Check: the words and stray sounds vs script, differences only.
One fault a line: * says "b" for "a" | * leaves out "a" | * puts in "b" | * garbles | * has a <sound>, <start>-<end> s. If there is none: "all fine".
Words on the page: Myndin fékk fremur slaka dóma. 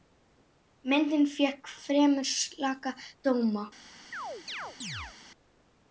* has a chirp, 4.1-5.2 s